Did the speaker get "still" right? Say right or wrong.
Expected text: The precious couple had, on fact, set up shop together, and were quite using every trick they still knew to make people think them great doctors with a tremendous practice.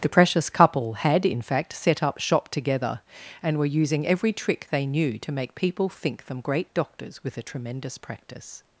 wrong